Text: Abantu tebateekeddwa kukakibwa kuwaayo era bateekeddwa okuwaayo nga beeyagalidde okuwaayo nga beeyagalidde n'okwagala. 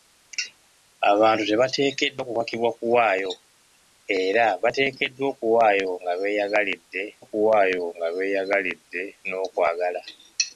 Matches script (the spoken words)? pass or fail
pass